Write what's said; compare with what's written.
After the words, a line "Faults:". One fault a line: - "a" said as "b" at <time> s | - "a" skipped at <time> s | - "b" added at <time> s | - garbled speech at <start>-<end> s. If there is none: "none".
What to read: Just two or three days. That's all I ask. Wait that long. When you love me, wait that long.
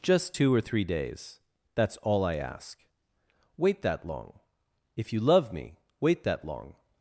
Just two or three days. That's all I ask. Wait that long. If you love me, wait that long.
Faults:
- "When" said as "If" at 4.9 s